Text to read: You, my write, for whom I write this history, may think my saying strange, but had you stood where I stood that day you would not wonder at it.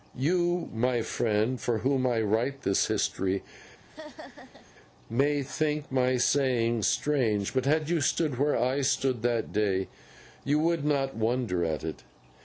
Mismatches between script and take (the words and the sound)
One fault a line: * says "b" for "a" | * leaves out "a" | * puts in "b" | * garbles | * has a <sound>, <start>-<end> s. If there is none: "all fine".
* says "friend" for "write"
* has a laugh, 3.9-4.7 s